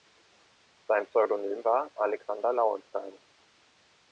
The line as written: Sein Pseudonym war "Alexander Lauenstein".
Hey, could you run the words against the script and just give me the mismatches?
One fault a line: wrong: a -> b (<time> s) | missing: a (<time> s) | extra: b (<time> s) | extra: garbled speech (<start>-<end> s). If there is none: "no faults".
no faults